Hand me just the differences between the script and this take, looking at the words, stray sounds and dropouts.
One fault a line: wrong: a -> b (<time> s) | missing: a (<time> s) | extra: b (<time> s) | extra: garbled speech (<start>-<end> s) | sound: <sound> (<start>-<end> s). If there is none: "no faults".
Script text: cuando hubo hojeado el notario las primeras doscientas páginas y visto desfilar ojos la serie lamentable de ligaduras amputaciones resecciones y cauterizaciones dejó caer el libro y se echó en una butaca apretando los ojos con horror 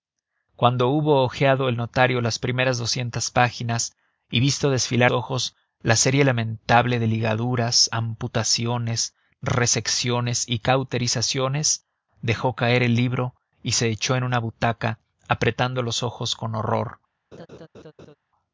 sound: laugh (17.3-18.1 s)